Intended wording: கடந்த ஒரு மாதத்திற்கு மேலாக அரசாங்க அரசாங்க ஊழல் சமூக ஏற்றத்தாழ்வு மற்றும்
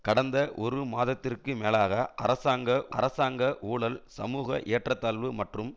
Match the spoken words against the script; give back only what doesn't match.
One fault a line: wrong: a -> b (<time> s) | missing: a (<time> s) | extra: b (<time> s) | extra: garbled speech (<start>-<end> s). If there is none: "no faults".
no faults